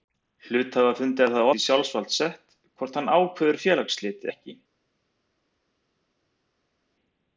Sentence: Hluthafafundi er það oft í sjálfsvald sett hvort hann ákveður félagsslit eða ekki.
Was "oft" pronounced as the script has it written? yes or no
no